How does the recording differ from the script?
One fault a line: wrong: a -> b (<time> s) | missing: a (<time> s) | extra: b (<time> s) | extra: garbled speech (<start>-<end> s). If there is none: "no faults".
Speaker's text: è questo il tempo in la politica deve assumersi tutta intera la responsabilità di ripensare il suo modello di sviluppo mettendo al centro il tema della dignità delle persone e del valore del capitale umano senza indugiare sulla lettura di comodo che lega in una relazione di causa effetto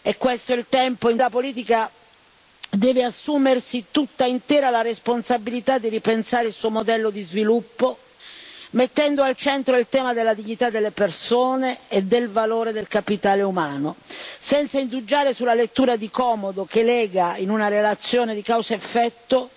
no faults